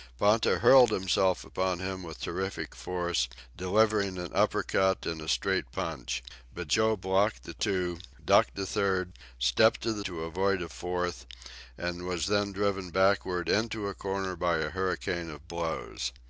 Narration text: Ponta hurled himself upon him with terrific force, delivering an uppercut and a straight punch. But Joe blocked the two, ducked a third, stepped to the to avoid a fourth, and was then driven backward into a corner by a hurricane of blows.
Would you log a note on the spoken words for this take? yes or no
no